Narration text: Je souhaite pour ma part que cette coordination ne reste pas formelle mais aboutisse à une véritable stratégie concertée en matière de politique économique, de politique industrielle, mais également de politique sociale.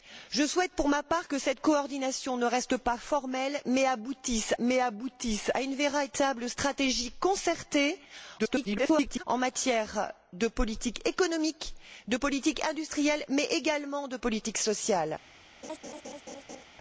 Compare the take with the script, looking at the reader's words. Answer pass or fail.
fail